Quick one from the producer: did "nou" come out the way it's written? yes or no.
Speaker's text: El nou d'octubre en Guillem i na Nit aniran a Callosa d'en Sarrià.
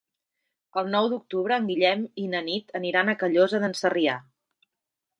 yes